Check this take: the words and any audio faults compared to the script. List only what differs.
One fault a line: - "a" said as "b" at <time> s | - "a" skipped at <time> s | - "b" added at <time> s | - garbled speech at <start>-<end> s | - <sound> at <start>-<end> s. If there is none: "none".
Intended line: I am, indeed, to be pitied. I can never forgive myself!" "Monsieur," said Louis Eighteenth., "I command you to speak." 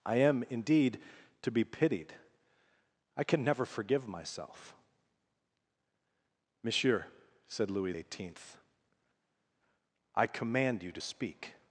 none